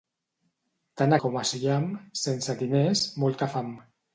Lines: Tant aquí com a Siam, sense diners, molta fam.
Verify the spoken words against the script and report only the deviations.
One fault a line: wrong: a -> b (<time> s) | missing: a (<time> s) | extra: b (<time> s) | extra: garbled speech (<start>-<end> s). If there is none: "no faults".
missing: aquí (1.1 s)